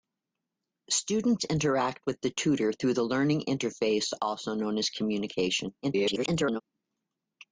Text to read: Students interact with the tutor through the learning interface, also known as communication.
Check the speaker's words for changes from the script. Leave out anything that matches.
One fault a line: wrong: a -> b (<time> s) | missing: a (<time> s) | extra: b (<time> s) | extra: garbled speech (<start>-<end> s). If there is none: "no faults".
extra: garbled speech (5.8-6.6 s)